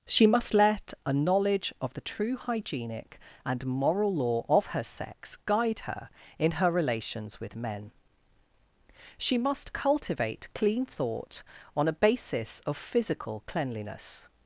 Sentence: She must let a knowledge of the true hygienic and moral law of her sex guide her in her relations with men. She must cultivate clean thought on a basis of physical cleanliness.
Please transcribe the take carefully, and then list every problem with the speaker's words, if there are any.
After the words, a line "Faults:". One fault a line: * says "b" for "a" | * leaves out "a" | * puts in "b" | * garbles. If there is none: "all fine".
She must let a knowledge of the true hygienic and moral law of her sex guide her in her relations with men. She must cultivate clean thought on a basis of physical cleanliness.
Faults:
all fine